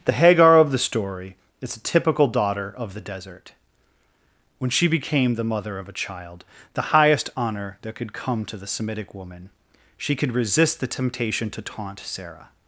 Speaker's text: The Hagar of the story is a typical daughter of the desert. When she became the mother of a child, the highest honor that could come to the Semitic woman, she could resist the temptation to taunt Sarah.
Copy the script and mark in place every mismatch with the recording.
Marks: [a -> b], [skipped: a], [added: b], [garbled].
The Hagar of the story is a typical daughter of the desert. When she became the mother of a child, the highest honor that could come to the Semitic woman, she could resist the temptation to taunt Sarah.